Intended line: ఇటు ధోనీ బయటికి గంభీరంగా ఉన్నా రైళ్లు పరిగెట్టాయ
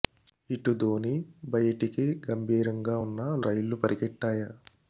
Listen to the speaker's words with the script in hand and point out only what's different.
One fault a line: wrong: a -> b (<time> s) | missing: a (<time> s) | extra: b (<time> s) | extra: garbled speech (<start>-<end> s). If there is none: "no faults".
no faults